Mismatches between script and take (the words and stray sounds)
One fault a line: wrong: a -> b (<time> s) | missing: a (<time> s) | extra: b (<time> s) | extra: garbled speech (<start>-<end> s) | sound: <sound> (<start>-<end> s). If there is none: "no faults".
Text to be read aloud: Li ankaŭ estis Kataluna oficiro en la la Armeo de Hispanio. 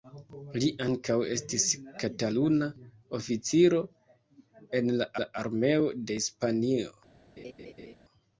sound: laugh (7.4-7.9 s)